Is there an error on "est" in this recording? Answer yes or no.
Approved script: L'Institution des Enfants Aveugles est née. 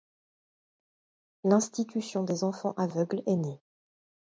no